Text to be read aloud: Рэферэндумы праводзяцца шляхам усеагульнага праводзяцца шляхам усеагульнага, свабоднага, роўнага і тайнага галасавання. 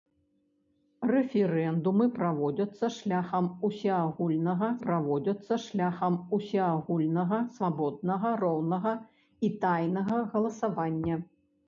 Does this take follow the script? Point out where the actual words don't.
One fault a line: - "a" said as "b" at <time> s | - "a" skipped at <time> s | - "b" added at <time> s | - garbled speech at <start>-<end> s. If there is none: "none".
none